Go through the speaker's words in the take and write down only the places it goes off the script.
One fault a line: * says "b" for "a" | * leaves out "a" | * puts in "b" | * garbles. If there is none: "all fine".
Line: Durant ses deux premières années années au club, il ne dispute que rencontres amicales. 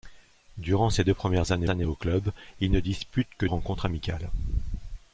all fine